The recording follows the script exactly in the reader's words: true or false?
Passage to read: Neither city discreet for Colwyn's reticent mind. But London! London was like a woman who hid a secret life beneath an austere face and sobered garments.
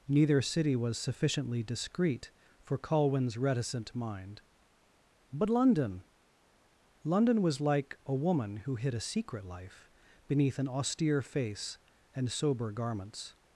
false